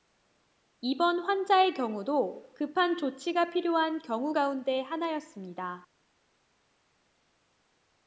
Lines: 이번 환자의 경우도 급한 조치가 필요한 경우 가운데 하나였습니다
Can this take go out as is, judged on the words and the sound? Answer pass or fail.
pass